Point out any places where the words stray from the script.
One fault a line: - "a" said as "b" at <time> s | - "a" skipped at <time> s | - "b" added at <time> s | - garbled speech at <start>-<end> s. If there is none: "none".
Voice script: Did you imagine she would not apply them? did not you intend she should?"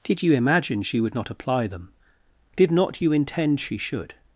none